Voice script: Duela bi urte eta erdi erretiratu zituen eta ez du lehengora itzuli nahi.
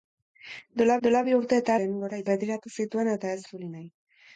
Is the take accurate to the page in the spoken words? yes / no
no